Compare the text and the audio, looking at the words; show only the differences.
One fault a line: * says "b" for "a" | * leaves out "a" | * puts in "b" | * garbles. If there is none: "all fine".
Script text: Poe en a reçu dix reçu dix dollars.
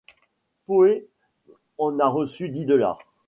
* leaves out "reçu dix"